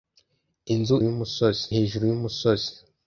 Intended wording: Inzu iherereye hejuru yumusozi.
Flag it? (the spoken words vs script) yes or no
yes